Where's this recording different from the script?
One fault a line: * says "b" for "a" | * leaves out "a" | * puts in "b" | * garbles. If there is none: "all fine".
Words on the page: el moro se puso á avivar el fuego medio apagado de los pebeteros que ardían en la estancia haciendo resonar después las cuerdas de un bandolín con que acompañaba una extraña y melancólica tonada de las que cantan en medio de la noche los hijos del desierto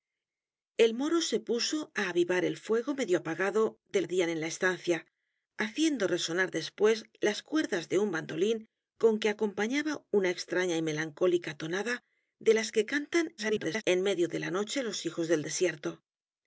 * leaves out "los pebeteros que"
* garbles